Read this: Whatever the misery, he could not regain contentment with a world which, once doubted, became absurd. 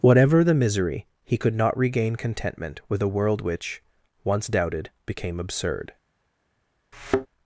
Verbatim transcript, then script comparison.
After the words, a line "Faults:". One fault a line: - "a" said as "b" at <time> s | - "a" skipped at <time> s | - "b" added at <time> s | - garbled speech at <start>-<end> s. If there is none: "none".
Whatever the misery, he could not regain contentment with a world which, once doubted, became absurd.
Faults:
none